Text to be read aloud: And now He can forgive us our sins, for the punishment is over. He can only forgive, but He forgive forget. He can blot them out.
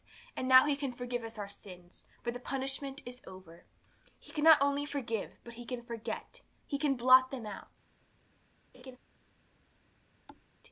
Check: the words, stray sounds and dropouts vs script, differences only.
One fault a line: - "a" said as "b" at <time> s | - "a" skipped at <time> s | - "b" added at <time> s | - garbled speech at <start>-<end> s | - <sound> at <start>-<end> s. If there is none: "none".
- "not" added at 4.4 s
- "forgive" said as "can" at 5.7 s
- laugh at 8.7-9.0 s
- thud at 10.3-10.5 s